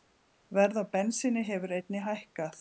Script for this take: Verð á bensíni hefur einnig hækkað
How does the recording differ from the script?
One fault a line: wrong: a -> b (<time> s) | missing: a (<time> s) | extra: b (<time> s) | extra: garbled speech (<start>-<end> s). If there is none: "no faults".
no faults